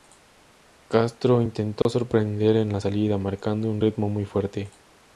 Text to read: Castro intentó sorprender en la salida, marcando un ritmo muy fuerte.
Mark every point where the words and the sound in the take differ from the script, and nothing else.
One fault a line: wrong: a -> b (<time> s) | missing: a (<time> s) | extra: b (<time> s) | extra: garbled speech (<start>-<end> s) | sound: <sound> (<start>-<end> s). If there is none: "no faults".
sound: dropout (1.8-1.9 s)